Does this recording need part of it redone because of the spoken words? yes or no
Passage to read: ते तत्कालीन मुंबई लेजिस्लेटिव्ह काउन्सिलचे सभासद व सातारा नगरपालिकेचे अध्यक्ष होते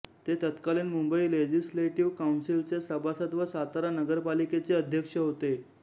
no